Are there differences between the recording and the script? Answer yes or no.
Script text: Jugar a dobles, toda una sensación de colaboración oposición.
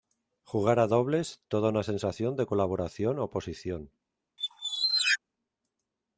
no